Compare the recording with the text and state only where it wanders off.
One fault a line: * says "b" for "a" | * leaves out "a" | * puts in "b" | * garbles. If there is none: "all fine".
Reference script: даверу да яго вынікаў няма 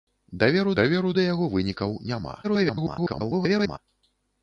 * puts in "даверу"
* garbles